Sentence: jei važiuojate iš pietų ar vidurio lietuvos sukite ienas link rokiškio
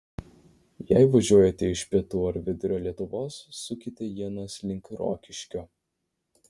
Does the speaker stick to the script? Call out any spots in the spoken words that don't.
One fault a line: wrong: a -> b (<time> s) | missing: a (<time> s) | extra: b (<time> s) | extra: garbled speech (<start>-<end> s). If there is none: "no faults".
no faults